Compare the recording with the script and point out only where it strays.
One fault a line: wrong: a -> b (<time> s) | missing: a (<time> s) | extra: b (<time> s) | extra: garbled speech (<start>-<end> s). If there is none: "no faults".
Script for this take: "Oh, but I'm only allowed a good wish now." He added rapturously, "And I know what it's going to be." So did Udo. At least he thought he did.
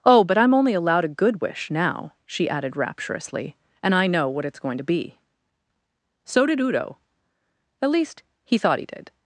wrong: He -> She (2.2 s)